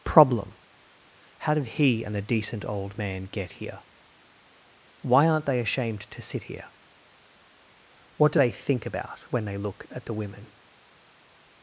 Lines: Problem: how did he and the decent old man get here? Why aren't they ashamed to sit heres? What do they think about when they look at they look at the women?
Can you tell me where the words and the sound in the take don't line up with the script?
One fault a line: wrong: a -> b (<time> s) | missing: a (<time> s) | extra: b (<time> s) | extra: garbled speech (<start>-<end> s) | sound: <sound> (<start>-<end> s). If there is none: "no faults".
wrong: heres -> here (6.4 s)
missing: they look at (10.1 s)